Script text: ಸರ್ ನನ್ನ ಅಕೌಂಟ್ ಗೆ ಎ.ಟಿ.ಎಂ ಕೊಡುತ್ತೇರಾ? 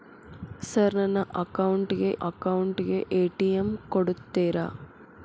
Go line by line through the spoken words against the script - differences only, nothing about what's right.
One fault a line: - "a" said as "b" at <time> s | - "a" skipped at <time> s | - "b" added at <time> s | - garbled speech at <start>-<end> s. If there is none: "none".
- "ಅಕೌಂಟ್ ಗೆ" added at 2.2 s